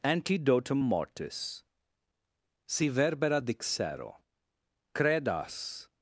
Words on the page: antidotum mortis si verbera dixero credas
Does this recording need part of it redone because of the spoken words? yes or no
no